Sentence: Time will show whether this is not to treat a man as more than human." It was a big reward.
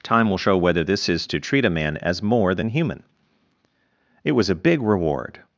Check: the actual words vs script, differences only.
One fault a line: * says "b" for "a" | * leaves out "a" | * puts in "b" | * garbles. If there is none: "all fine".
* leaves out "not"